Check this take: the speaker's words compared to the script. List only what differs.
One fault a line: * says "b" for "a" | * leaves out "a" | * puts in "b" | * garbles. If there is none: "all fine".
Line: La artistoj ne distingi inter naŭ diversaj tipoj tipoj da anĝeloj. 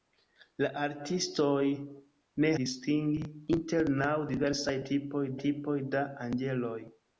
all fine